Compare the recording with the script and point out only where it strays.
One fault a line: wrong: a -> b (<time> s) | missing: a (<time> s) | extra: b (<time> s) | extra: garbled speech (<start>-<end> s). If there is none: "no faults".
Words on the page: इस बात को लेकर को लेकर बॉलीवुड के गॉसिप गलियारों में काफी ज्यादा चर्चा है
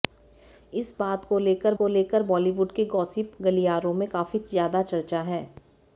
no faults